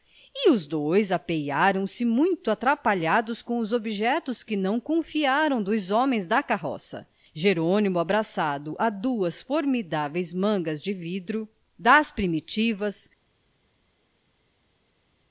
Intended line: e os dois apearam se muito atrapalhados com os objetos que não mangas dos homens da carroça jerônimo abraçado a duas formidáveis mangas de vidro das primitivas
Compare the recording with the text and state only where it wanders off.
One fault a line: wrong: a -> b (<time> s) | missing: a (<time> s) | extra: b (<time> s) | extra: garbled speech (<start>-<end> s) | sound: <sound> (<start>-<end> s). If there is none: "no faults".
wrong: mangas -> confiaram (4.8 s)